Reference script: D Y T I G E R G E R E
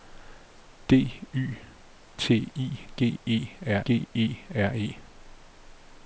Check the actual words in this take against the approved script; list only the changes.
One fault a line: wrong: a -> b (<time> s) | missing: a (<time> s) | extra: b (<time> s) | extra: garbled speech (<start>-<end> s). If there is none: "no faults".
no faults